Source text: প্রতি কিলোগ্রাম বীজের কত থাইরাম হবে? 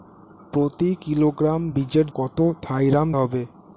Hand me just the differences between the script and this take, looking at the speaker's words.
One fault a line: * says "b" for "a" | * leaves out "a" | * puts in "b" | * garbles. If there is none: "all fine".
all fine